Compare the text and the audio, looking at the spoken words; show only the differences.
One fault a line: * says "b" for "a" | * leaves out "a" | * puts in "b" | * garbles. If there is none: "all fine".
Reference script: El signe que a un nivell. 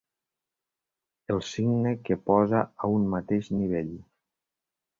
* puts in "posa"
* puts in "mateix"